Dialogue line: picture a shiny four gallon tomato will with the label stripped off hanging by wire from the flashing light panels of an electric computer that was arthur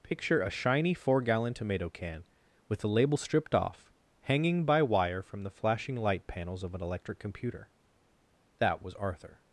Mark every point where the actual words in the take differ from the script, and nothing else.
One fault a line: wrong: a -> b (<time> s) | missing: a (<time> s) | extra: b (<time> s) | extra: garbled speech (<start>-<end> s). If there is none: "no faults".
wrong: will -> can (1.9 s)